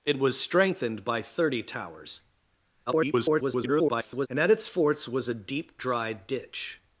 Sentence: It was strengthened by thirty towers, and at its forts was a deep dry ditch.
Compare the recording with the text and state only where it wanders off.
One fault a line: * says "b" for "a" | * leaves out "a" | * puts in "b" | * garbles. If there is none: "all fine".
* garbles